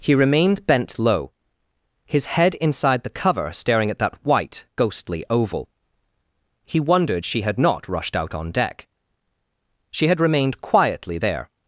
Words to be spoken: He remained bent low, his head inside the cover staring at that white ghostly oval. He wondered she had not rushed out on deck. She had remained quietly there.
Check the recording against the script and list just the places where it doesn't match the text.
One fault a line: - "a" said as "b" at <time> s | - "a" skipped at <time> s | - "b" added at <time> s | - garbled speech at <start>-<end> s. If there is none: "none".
none